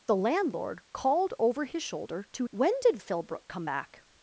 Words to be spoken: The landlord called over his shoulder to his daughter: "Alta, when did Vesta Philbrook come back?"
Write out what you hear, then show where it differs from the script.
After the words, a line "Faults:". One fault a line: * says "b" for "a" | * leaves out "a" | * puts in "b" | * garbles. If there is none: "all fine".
The landlord called over his shoulder to when did Philbrook come back?"
Faults:
* leaves out "his daughter Alta"
* leaves out "Vesta"